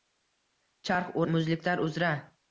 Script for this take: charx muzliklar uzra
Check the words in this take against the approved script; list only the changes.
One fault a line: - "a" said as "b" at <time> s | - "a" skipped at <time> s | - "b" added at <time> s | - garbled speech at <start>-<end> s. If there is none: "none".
none